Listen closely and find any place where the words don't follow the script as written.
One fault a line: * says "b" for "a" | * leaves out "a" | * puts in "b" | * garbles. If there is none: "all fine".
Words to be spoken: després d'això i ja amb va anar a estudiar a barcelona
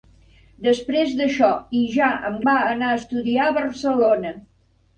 all fine